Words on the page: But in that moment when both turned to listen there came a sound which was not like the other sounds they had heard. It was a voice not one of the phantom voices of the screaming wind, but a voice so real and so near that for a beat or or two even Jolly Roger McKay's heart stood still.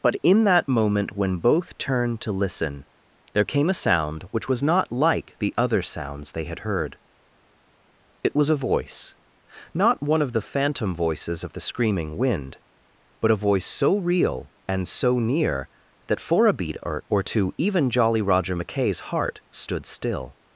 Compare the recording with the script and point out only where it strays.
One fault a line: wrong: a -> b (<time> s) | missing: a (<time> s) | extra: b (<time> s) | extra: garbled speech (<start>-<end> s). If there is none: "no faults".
no faults